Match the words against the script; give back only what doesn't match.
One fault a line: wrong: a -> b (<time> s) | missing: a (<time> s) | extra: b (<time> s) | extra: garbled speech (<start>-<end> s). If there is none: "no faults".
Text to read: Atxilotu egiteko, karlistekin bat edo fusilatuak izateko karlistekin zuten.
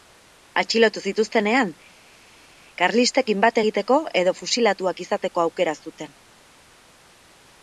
wrong: egiteko -> zituztenean (1.1 s)
extra: egiteko (3.6 s)
wrong: karlistekin -> aukera (5.4 s)